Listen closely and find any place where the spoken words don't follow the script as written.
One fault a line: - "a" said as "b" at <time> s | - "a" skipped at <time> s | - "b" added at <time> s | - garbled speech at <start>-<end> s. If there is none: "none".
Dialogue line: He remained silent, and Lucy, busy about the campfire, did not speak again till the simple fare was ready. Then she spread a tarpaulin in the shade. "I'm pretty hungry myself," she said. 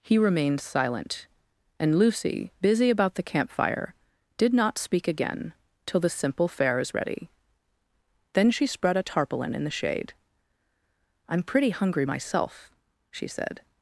- "was" said as "is" at 6.8 s